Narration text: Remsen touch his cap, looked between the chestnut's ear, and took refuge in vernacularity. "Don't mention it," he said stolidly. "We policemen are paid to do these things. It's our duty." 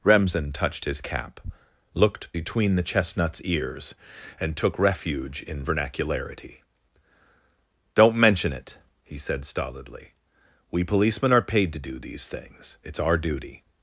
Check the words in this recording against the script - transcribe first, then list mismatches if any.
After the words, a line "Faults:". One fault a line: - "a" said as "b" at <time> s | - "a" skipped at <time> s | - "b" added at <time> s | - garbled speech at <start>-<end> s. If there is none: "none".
Remsen touched his cap, looked between the chestnut's ears, and took refuge in vernacularity. "Don't mention it," he said stolidly. "We policemen are paid to do these things. It's our duty."
Faults:
- "touch" said as "touched" at 0.5 s
- "ear" said as "ears" at 3.4 s